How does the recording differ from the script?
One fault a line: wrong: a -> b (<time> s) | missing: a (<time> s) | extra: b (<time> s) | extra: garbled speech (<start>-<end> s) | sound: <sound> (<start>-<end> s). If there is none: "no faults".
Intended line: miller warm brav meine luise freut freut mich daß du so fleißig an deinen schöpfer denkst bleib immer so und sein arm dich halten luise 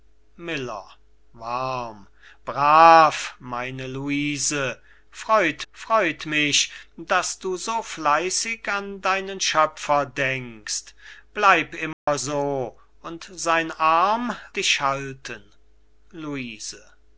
sound: dropout (11.9-12.1 s)